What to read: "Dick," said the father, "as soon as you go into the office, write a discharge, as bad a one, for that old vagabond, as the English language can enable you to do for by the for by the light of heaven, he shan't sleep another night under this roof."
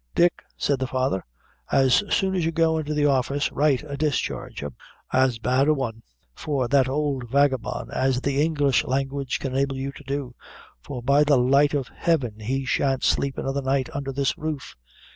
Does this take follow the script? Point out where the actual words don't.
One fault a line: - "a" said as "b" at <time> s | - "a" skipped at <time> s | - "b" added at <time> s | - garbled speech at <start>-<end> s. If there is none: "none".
- "for by the" skipped at 11.4 s